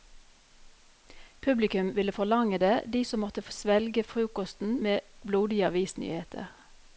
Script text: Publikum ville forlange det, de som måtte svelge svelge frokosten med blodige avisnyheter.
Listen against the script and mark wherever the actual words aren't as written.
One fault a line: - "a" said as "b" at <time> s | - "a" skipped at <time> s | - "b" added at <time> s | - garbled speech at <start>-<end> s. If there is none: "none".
- "svelge" skipped at 4.0 s